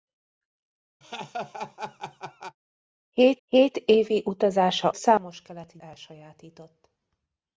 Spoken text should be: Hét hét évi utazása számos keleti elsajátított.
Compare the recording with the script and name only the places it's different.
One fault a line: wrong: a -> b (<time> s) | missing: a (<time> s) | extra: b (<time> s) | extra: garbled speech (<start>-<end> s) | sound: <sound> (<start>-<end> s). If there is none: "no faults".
sound: laugh (1.0-2.6 s)